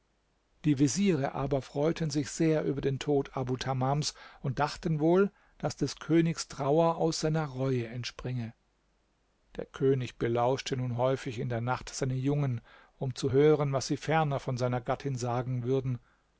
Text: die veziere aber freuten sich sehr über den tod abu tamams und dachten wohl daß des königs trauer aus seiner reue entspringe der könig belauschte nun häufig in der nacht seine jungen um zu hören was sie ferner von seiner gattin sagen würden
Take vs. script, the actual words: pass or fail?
pass